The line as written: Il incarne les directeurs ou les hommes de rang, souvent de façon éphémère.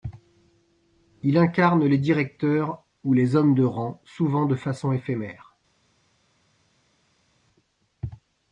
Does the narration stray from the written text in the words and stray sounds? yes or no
no